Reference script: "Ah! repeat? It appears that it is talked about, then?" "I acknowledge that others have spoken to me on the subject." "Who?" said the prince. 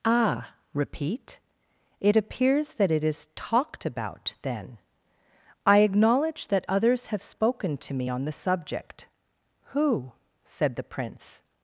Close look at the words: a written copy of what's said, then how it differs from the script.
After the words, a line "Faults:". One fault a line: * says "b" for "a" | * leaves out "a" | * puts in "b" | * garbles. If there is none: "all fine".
"Ah! repeat? It appears that it is talked about, then?" "I acknowledge that others have spoken to me on the subject." "Who?" said the prince.
Faults:
all fine